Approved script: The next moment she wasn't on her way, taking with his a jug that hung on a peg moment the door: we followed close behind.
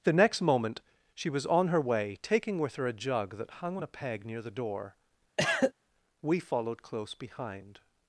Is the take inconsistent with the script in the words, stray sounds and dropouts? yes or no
yes